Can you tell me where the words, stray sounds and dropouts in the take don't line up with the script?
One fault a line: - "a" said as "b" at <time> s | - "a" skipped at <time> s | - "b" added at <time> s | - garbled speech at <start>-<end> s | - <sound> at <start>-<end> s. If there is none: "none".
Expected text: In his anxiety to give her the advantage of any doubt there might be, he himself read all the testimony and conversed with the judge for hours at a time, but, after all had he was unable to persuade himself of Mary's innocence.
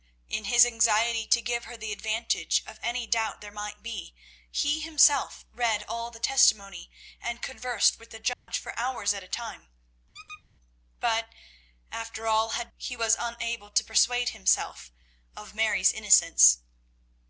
- dropout at 8.3-8.5 s
- squeak at 10.1-10.4 s